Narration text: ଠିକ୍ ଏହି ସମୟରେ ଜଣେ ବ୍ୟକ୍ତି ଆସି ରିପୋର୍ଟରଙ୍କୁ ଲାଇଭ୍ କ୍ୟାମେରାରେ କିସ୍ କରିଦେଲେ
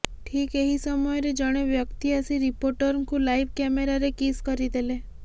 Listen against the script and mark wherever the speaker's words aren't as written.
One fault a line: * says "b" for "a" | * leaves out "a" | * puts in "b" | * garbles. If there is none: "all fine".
all fine